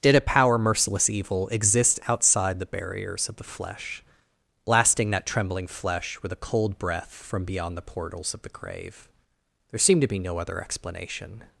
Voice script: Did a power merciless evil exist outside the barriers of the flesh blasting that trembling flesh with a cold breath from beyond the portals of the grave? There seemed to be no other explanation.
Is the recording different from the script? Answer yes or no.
no